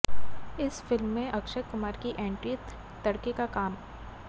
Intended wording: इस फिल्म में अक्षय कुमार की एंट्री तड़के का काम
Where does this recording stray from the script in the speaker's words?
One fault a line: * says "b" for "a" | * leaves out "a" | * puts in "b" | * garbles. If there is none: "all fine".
all fine